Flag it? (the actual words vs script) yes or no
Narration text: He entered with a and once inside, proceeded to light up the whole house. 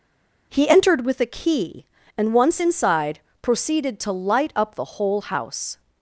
yes